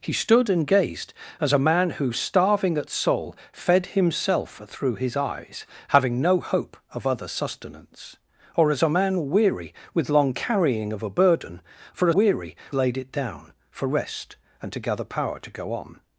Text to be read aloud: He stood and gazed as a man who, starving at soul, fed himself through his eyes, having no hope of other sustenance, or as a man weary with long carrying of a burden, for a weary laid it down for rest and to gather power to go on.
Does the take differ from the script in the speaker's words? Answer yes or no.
no